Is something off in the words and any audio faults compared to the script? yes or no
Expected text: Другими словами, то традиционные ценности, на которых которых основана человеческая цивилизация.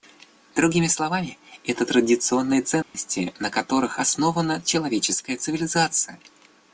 yes